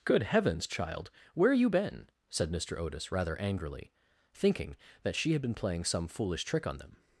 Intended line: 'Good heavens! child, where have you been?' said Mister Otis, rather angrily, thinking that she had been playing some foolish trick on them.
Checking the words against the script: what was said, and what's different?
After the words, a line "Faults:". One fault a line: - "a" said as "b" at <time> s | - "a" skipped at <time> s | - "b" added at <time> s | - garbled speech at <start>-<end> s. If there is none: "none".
'Good heavens! child, where you been?' said Mister Otis, rather angrily, thinking that she had been playing some foolish trick on them.
Faults:
- "have" skipped at 1.5 s